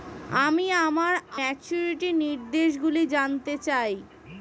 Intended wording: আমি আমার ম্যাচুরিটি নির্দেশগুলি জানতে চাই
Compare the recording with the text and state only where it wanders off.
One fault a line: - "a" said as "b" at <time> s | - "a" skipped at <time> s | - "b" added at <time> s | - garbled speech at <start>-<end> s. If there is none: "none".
none